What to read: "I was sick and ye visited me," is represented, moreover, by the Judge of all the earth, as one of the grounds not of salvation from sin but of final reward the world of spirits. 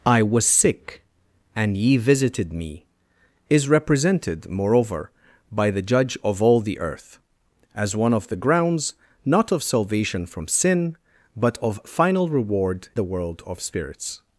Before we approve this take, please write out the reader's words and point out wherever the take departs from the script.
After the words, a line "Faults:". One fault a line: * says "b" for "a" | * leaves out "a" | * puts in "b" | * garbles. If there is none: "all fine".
"I was sick and ye visited me," is represented, moreover, by the Judge of all the earth, as one of the grounds not of salvation from sin but of final reward the world of spirits.
Faults:
all fine